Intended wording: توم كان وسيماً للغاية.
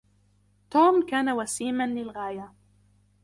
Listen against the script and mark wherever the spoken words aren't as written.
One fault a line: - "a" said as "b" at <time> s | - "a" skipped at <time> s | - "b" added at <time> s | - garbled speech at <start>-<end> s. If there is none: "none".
none